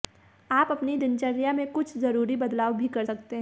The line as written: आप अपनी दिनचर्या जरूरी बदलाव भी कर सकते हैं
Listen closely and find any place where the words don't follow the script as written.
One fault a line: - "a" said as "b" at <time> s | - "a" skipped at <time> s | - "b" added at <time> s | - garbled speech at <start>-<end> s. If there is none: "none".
- "में कुछ" added at 1.5 s